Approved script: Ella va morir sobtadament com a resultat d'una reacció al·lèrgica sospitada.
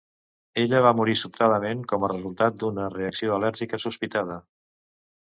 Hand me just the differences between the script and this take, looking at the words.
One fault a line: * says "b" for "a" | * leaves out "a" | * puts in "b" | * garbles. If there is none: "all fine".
all fine